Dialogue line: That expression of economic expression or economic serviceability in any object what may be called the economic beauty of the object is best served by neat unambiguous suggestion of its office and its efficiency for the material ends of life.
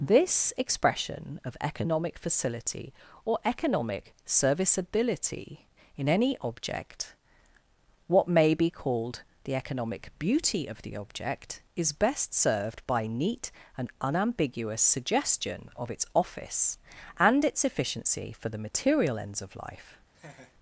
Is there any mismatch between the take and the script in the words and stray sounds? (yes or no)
yes